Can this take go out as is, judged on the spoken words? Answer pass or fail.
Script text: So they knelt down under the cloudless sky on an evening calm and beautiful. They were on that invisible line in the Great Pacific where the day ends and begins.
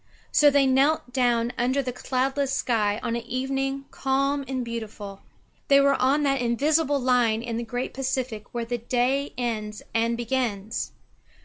pass